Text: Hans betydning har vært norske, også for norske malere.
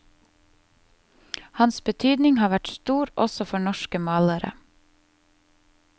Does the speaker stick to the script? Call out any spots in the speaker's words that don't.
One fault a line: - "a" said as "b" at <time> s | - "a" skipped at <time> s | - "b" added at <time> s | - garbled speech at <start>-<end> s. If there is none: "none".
- "norske" said as "stor" at 2.8 s